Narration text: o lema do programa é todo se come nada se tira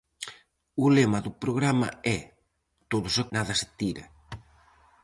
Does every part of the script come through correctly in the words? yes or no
no